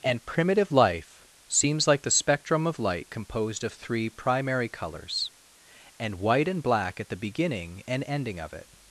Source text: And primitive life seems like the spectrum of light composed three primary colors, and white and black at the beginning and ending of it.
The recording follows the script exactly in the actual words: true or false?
false